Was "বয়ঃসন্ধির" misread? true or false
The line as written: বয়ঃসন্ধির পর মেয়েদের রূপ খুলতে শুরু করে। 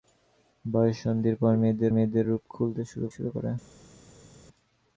false